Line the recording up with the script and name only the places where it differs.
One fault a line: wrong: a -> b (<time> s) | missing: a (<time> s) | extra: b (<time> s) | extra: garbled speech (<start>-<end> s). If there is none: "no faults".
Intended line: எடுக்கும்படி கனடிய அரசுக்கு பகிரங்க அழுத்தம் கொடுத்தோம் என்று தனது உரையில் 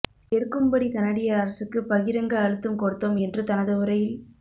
no faults